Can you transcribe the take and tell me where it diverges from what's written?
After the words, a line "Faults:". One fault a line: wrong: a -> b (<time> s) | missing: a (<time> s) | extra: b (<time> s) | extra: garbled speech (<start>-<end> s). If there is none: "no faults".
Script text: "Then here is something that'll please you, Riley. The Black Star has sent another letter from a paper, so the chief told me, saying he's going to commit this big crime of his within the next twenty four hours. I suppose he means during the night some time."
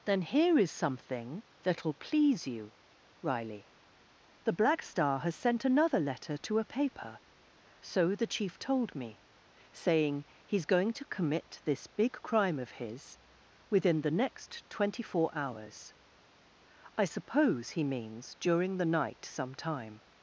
"Then here is something that'll please you, Riley. The Black Star has sent another letter to a paper, so the chief told me, saying he's going to commit this big crime of his within the next twenty four hours. I suppose he means during the night some time."
Faults:
wrong: from -> to (6.4 s)